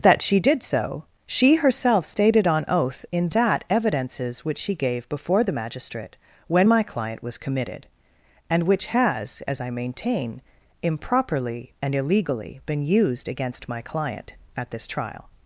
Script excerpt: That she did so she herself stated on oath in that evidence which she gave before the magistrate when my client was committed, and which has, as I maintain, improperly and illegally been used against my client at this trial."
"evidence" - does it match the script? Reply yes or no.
no